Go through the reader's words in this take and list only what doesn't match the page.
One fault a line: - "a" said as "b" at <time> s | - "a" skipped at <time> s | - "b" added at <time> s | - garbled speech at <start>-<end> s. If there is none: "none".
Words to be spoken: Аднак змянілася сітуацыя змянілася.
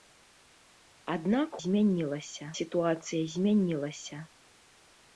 none